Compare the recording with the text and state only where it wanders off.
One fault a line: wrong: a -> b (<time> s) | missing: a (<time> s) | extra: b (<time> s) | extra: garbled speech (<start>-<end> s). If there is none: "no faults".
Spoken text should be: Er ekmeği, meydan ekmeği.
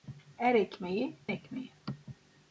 missing: meydan (1.1 s)